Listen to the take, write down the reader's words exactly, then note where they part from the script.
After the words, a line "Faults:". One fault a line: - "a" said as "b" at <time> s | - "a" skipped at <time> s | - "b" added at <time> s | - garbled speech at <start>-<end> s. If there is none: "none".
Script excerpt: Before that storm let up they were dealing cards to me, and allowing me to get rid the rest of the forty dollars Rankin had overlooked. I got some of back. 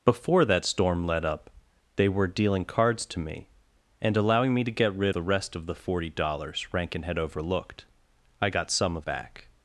Before that storm let up they were dealing cards to me, and allowing me to get rid the rest of the forty dollars Rankin had overlooked. I got some of back.
Faults:
none